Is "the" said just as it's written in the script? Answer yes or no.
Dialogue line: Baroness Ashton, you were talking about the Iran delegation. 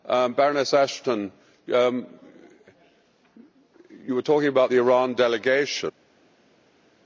yes